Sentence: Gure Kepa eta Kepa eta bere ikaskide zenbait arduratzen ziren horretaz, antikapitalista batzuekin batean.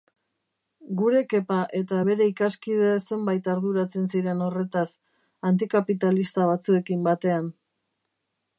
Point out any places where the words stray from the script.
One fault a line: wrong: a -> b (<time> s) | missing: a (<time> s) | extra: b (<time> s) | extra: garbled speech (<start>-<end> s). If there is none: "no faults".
missing: Kepa eta (2.0 s)